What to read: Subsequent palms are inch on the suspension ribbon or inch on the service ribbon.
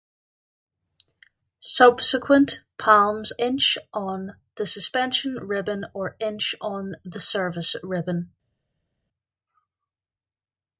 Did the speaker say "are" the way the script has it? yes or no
no